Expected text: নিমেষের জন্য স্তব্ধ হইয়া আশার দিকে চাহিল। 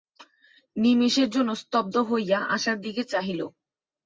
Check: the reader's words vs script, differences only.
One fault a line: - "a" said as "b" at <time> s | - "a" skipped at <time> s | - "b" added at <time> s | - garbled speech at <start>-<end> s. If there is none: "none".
none